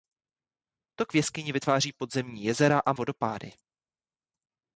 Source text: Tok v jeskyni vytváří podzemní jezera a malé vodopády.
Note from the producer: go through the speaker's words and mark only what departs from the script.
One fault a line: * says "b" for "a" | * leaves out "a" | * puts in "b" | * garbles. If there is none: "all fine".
* leaves out "malé"